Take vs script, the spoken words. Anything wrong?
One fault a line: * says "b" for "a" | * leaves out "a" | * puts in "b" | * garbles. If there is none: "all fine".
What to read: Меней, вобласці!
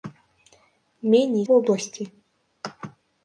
all fine